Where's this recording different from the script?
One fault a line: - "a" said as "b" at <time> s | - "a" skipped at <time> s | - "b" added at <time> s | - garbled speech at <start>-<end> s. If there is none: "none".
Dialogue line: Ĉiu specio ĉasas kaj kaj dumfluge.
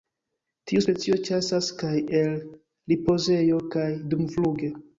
- "Ĉiu" said as "Tiu" at 0.7 s
- "el ripozejo" added at 2.2 s